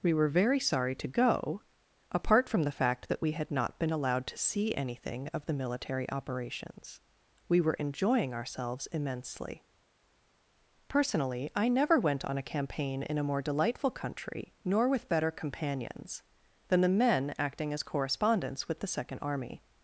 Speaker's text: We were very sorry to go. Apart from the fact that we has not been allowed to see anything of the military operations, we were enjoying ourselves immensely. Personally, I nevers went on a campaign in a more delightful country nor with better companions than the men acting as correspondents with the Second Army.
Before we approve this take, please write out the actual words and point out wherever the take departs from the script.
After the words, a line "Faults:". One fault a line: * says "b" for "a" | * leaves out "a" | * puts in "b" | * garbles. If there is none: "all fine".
We were very sorry to go. Apart from the fact that we had not been allowed to see anything of the military operations, we were enjoying ourselves immensely. Personally, I never went on a campaign in a more delightful country nor with better companions than the men acting as correspondents with the Second Army.
Faults:
* says "had" for "has"
* says "never" for "nevers"